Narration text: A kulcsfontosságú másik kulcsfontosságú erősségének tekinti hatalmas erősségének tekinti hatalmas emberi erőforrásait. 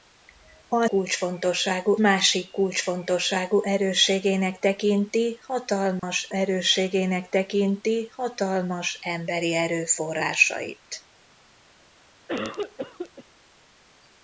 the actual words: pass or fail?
pass